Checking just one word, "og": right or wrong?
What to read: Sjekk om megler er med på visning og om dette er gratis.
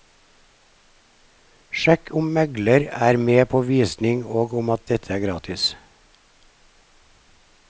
right